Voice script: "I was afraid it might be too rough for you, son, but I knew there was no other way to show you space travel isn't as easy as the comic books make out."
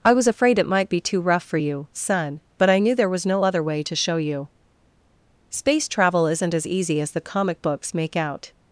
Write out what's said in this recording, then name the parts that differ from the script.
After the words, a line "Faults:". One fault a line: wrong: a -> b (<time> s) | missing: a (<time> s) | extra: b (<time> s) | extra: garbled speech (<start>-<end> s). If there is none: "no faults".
"I was afraid it might be too rough for you, son, but I knew there was no other way to show you space travel isn't as easy as the comic books make out."
Faults:
no faults